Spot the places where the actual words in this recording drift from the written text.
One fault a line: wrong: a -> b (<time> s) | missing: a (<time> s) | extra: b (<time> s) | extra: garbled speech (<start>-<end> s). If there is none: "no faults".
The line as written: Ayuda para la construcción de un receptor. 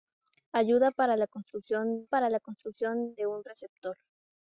extra: para la construcción (2.0 s)